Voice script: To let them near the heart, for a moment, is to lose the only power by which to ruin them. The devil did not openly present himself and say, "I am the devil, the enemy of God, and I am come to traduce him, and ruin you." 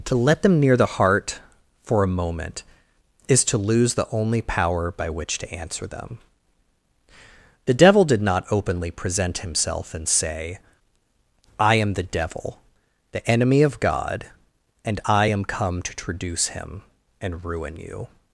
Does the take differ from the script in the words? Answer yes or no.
yes